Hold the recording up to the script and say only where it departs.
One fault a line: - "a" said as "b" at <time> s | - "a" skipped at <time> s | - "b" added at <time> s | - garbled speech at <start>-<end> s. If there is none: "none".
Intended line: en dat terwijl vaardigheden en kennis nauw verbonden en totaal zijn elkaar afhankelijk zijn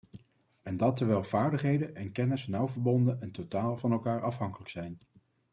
- "zijn" said as "van" at 3.8 s